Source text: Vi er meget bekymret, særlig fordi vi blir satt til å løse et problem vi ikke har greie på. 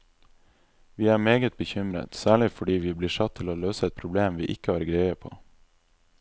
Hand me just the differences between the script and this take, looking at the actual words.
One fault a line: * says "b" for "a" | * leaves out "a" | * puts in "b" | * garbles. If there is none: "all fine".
all fine